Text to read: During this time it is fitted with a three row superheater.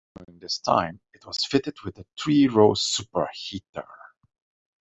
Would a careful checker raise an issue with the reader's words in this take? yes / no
yes